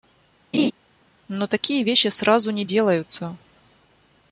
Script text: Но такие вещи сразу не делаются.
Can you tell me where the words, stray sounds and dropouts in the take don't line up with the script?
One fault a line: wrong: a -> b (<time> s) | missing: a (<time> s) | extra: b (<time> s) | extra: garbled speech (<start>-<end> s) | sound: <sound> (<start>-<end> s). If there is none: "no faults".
sound: laugh (0.5-0.7 s)